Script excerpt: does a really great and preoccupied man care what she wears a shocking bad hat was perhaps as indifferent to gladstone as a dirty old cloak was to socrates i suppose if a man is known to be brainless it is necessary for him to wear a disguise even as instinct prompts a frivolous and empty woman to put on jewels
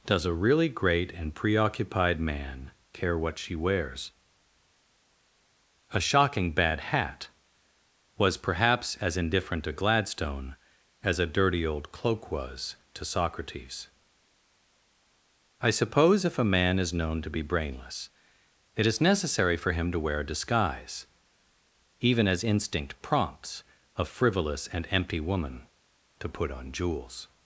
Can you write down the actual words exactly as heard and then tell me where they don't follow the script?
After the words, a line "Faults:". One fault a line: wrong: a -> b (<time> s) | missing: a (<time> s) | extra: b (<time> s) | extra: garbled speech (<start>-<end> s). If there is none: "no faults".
does a really great and preoccupied man care what she wears a shocking bad hat was perhaps as indifferent to gladstone as a dirty old cloak was to socrates i suppose if a man is known to be brainless it is necessary for him to wear a disguise even as instinct prompts a frivolous and empty woman to put on jewels
Faults:
no faults